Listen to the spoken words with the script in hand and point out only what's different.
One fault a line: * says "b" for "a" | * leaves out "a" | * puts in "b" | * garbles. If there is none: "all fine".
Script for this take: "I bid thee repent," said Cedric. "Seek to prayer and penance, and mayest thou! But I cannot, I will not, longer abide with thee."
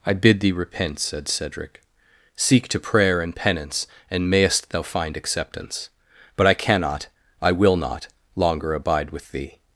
* puts in "find acceptance"